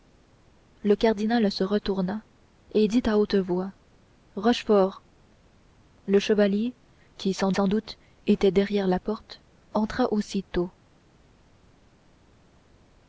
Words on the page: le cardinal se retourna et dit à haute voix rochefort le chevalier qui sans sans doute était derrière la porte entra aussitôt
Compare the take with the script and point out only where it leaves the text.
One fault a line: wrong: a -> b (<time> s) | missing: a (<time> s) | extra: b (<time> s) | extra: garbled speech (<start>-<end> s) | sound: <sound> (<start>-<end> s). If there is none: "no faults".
no faults